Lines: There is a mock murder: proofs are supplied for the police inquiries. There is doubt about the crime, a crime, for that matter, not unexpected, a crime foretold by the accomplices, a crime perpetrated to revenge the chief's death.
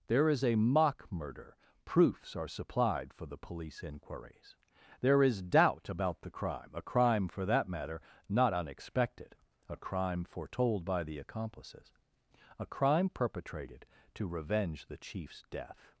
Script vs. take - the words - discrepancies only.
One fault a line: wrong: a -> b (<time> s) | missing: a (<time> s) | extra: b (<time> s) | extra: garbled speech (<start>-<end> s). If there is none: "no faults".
no faults